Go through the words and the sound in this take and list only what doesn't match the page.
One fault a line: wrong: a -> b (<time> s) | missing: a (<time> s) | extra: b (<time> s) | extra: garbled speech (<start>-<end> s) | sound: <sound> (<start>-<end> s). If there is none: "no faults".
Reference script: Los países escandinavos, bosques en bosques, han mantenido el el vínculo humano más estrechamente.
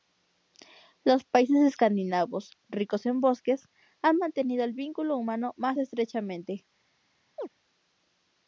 wrong: bosques -> ricos (2.7 s)
missing: el (4.7 s)
sound: chirp (7.4-7.5 s)